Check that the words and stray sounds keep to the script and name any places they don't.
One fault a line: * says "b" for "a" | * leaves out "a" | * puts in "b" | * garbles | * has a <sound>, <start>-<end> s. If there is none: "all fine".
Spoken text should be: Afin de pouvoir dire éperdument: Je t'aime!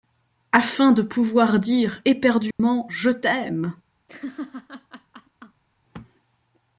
* has a dropout, 2.5-2.6 s
* has a laugh, 4.1-5.6 s